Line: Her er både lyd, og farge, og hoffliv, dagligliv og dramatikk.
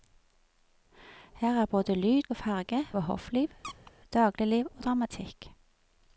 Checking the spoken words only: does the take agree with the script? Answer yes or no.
yes